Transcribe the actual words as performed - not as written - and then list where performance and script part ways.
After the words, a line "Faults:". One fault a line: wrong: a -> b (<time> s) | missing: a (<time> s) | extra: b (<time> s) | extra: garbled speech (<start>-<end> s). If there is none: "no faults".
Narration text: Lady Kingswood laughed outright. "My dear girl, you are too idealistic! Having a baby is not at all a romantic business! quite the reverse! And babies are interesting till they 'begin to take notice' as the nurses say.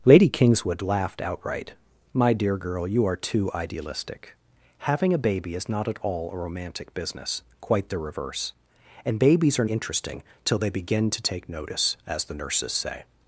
Lady Kingswood laughed outright. "My dear girl, you are too idealistic! Having a baby is not at all a romantic business! quite the reverse! And babies are interesting till they 'begin to take notice' as the nurses say.
Faults:
no faults